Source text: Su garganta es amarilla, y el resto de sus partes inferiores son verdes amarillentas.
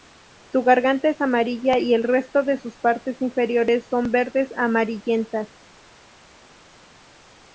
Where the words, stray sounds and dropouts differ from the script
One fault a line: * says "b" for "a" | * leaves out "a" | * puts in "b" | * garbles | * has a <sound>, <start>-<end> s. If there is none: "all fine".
all fine